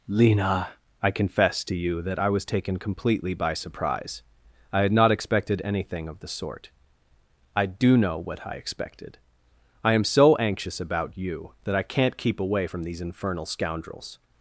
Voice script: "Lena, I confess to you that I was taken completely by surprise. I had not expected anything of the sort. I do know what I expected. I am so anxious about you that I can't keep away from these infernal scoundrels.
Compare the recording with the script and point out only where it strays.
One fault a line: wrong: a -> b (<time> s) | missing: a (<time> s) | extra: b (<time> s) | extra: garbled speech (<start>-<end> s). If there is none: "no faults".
no faults